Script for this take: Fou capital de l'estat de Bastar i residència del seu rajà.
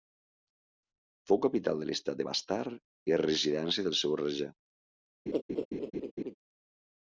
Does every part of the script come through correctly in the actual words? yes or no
yes